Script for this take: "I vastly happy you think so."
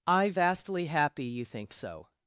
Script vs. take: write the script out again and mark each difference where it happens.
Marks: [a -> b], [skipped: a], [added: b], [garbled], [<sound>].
"I vastly happy you think so."